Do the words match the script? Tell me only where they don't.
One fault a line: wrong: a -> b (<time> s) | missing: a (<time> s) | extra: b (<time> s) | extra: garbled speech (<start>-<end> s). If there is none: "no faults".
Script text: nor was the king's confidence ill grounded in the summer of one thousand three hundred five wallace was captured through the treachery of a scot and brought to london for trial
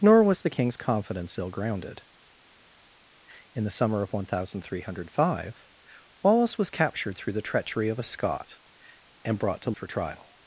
missing: london (9.7 s)